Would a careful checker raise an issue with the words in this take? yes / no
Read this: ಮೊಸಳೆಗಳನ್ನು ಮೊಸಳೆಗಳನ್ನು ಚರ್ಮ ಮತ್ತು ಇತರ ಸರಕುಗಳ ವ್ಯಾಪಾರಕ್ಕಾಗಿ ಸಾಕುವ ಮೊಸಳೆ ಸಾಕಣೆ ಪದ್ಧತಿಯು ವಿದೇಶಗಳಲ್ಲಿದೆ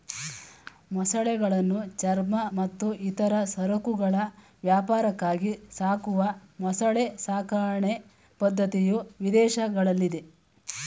yes